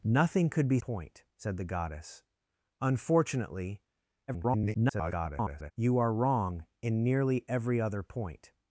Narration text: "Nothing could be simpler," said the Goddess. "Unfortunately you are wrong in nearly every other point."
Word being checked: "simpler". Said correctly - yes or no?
no